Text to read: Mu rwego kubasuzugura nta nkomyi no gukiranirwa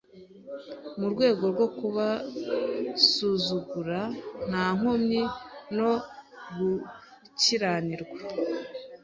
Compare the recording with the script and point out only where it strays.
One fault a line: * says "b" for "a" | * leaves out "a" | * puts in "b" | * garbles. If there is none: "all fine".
* puts in "rwo"